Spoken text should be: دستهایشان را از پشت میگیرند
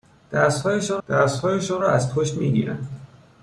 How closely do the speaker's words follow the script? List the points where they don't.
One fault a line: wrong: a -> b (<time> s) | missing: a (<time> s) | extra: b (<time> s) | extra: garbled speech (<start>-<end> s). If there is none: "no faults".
extra: دستهایشان (1.1 s)